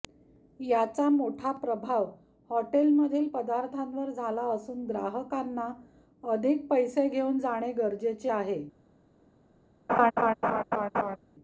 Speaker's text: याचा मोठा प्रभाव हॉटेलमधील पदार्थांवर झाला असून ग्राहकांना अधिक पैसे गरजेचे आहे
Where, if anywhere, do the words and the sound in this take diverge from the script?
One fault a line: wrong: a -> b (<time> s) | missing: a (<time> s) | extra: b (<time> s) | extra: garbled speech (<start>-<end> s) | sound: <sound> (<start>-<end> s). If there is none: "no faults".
extra: घेऊन जाणे (7.1 s)
sound: laugh (9.9-11.2 s)